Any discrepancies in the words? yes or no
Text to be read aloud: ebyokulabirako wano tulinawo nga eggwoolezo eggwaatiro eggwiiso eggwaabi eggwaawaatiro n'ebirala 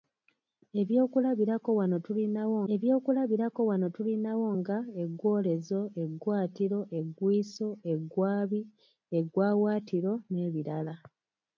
yes